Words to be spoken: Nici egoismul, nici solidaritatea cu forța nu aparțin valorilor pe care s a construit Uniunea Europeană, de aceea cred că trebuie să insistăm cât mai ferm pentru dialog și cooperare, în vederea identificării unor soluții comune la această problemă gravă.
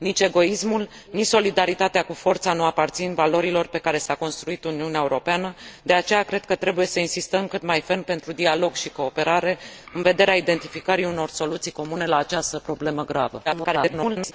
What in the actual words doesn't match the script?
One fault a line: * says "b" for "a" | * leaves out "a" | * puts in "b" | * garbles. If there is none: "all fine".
* garbles